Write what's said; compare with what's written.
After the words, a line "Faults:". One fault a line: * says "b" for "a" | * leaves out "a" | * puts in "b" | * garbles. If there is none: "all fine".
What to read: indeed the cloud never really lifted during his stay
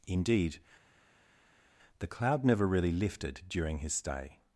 indeed the cloud never really lifted during his stay
Faults:
all fine